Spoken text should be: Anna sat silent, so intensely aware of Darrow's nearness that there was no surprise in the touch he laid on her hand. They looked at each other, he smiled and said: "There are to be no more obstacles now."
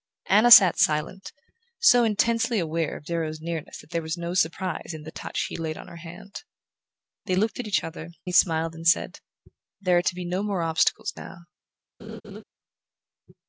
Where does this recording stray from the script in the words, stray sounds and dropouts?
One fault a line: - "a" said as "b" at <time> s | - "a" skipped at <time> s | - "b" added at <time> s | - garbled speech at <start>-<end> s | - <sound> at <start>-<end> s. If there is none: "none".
- laugh at 12.0-12.4 s